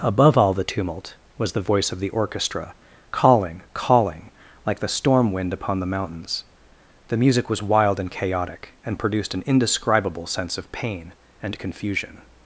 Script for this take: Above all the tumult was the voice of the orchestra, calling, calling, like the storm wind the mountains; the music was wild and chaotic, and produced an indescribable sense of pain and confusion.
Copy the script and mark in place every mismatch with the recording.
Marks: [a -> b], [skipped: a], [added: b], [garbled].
Above all the tumult was the voice of the orchestra, calling, calling, like the storm wind [added: upon] the mountains; the music was wild and chaotic, and produced an indescribable sense of pain and confusion.